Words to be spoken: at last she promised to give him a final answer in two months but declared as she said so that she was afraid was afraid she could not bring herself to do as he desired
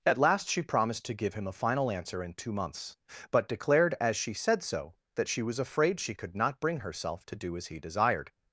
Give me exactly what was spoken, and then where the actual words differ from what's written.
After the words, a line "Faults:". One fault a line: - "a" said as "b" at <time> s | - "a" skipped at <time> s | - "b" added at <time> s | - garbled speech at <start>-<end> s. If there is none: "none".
at last she promised to give him a final answer in two months but declared as she said so that she was afraid she could not bring herself to do as he desired
Faults:
- "was afraid" skipped at 6.0 s